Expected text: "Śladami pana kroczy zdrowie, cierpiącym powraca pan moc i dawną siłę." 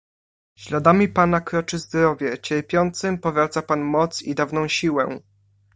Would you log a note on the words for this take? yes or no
no